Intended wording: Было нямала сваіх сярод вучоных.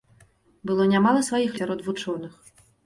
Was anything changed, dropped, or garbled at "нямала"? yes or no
no